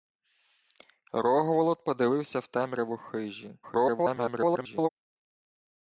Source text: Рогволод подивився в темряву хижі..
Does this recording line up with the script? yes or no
no